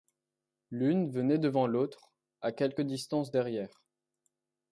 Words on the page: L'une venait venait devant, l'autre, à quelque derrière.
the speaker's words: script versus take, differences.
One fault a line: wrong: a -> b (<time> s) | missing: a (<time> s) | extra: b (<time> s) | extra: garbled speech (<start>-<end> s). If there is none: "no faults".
missing: venait (1.4 s)
extra: distance (2.8 s)